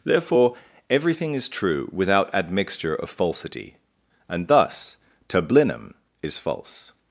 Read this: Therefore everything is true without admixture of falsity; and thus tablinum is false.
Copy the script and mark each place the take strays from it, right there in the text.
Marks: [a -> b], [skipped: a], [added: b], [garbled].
Therefore everything is true without admixture of falsity; and thus tablinum is false.